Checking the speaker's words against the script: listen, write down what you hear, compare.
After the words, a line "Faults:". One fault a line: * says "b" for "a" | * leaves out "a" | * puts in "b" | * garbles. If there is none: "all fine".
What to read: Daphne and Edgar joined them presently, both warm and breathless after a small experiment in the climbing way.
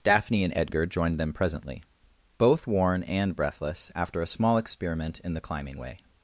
Daphne and Edgar joined them presently, both worn and breathless after a small experiment in the climbing way.
Faults:
* says "worn" for "warm"